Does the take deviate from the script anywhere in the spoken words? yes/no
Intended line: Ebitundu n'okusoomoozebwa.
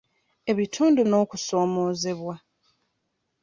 no